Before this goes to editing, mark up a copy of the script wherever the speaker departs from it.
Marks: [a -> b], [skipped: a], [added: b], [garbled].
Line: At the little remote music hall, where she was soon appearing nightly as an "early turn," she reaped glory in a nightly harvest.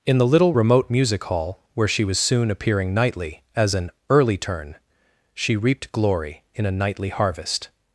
[At -> In] the little remote music hall, where she was soon appearing nightly as an "early turn," she reaped glory in a nightly harvest.